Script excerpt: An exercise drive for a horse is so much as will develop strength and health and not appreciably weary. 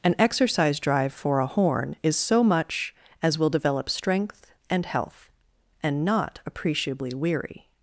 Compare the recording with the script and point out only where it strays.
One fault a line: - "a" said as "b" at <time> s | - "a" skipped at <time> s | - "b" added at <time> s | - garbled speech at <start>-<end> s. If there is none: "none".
- "horse" said as "horn" at 1.4 s